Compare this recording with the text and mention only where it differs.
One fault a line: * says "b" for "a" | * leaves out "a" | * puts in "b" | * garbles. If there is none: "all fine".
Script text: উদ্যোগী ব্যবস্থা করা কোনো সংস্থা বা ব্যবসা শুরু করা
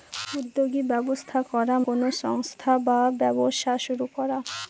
all fine